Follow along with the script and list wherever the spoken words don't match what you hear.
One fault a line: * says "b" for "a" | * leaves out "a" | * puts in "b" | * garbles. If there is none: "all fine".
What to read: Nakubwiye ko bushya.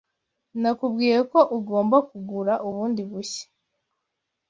* puts in "ugomba kugura bundi"